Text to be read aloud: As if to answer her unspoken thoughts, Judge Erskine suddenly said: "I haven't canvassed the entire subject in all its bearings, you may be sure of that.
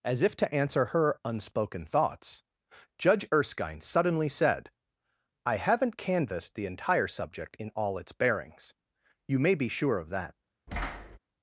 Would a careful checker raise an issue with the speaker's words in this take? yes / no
no